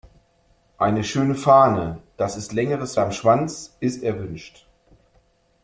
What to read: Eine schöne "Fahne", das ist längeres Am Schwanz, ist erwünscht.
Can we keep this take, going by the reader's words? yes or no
yes